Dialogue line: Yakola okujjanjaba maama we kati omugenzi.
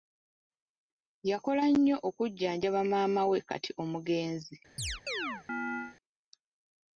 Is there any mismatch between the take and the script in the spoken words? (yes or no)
yes